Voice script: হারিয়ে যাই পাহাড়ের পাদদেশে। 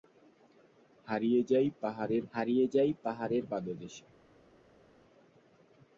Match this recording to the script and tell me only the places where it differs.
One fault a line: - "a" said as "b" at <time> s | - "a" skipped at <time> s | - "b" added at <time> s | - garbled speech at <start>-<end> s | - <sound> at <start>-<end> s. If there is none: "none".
- "হারিয়ে যাই পাহাড়ের" added at 2.3 s